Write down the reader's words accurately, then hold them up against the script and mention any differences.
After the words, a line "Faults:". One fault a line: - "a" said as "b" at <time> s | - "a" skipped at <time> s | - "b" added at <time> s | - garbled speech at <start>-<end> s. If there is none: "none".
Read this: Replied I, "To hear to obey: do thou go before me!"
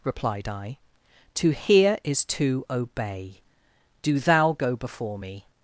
Replied I, "To hear is to obey: do thou go before me!"
Faults:
- "is" added at 2.0 s